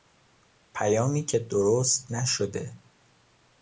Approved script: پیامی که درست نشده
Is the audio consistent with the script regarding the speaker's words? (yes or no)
yes